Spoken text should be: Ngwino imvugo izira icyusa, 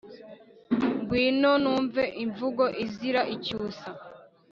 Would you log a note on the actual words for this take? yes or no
yes